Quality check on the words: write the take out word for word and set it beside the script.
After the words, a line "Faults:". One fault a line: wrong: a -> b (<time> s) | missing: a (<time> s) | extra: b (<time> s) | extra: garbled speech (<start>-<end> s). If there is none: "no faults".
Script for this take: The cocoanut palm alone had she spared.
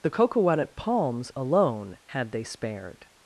The cocoanut palms alone had they spared.
Faults:
wrong: palm -> palms (0.8 s)
wrong: she -> they (2.3 s)